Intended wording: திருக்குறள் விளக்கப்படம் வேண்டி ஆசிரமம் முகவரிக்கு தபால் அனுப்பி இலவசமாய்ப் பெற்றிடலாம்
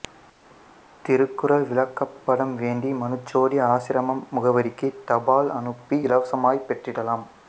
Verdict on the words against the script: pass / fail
fail